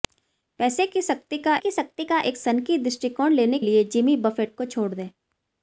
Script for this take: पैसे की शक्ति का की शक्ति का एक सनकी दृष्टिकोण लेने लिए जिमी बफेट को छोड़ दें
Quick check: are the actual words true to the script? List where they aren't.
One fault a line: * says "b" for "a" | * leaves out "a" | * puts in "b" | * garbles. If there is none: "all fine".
all fine